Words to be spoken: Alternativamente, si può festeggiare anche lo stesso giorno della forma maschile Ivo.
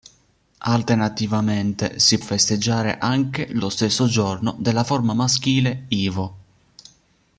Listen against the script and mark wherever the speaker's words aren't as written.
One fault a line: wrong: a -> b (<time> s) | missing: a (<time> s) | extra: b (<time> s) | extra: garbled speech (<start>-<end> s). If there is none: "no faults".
missing: può (2.2 s)